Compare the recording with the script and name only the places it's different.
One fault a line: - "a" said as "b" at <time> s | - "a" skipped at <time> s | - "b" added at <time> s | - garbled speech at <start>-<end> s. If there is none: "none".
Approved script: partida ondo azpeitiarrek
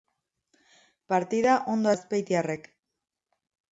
none